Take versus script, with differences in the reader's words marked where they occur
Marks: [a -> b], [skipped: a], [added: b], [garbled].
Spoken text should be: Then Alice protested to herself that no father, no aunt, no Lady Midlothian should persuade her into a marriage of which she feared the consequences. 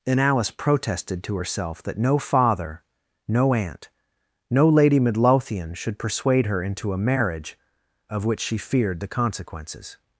[Then -> And] Alice protested to herself that no father, no aunt, no Lady Midlothian should persuade her into a marriage of which she feared the consequences.